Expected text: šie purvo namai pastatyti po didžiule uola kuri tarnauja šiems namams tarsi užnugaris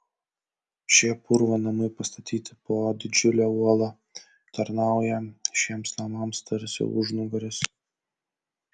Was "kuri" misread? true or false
true